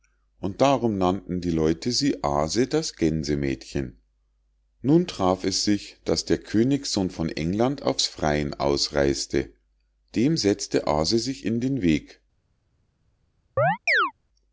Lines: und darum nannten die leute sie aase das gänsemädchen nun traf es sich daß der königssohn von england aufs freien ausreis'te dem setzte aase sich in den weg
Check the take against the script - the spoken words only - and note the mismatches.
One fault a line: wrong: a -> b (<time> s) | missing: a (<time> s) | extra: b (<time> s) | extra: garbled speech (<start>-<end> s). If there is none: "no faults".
no faults